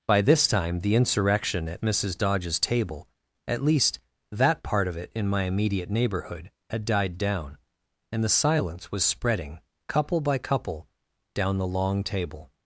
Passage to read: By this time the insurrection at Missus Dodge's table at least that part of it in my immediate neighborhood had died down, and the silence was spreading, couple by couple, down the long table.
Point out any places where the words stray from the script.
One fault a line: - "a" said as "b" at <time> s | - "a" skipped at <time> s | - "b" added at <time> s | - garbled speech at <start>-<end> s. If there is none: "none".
none